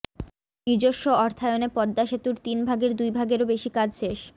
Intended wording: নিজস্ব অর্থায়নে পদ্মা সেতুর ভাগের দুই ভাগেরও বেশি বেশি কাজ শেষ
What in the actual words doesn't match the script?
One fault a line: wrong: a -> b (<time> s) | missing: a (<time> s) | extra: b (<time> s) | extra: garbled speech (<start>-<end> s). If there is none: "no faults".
extra: তিন (2.5 s)
missing: বেশি (3.7 s)